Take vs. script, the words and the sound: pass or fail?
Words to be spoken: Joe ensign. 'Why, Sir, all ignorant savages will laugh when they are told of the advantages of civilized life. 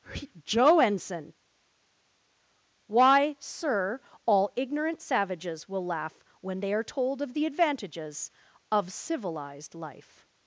pass